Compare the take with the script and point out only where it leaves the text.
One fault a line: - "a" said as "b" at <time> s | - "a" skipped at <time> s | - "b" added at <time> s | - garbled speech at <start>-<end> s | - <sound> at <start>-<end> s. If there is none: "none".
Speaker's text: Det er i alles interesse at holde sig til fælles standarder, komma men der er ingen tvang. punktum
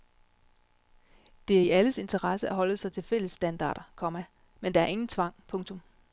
none